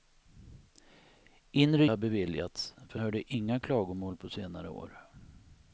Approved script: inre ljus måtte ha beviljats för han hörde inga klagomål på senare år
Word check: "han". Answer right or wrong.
wrong